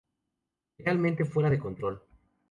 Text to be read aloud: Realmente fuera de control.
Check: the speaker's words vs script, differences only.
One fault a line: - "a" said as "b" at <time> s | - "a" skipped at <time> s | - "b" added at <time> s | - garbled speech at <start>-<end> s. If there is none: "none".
none